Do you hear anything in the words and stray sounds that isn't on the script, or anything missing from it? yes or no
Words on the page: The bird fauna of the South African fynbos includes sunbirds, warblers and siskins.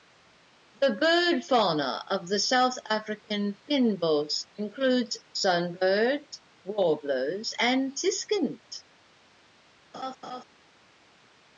yes